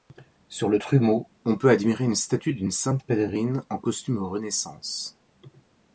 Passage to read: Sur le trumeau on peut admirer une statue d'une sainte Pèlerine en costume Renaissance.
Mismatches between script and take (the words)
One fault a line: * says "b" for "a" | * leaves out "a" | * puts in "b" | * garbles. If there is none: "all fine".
all fine